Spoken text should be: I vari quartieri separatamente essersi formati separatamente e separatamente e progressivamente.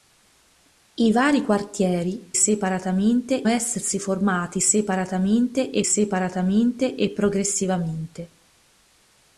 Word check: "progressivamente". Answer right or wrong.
right